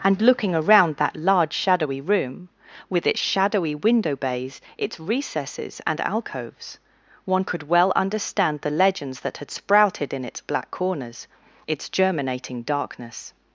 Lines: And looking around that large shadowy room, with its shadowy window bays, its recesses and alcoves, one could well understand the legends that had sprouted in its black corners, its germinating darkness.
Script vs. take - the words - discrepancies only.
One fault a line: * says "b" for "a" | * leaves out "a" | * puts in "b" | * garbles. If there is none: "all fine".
all fine